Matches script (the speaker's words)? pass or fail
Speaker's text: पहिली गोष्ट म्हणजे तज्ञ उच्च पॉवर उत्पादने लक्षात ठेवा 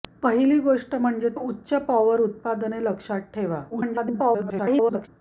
fail